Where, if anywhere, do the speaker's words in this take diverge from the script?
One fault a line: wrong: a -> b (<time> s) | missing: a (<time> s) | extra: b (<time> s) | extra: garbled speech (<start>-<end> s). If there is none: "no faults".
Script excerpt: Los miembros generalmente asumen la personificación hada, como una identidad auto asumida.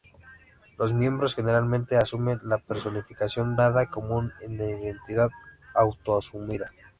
no faults